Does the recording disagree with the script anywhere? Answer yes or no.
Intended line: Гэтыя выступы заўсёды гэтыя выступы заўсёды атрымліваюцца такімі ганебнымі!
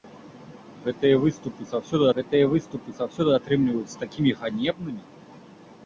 no